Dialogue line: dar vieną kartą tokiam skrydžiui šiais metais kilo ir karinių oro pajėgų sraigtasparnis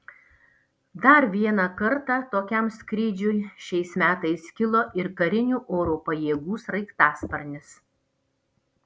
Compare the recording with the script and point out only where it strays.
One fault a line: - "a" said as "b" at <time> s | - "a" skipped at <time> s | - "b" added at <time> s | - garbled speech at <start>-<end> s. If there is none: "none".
none